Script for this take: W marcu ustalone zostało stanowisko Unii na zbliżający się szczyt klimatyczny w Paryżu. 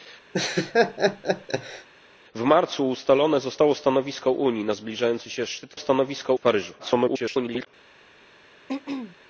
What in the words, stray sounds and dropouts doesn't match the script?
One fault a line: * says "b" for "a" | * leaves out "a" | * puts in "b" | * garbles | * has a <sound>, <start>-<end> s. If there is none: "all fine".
* has a laugh, 0.3-1.9 s
* says "stanowisko" for "klimatyczny"
* garbles
* has a throat clearing, 8.7-9.2 s